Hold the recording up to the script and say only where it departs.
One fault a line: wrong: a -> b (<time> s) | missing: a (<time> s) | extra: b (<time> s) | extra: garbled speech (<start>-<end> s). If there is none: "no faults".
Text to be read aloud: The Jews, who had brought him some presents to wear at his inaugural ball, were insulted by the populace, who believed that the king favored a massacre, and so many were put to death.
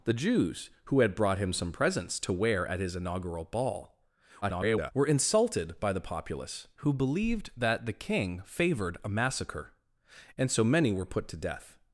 extra: garbled speech (4.4-4.9 s)